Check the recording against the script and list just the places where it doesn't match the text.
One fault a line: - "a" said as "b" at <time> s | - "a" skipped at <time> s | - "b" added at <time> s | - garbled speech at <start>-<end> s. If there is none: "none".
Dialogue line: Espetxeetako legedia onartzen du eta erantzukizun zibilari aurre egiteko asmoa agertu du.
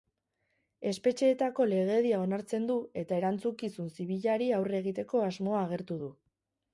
none